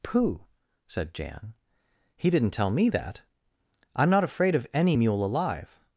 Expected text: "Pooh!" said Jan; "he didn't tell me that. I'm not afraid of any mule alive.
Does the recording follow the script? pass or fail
pass